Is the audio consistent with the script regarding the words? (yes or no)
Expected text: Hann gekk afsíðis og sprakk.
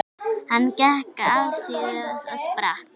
yes